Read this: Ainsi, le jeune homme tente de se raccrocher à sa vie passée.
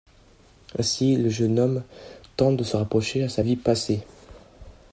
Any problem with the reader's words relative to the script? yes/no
no